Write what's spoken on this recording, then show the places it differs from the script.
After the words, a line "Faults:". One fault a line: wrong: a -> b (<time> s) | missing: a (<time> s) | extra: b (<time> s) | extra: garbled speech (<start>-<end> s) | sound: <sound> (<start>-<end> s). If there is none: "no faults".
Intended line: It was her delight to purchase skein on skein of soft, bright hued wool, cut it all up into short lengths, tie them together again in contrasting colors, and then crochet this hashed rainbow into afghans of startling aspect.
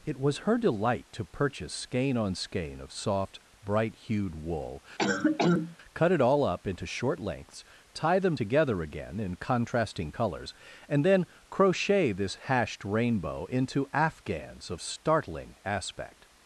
It was her delight to purchase skein on skein of soft, bright hued wool, cut it all up into short lengths, tie them together again in contrasting colors, and then crochet this hashed rainbow into afghans of startling aspect.
Faults:
sound: cough (5.0-5.8 s)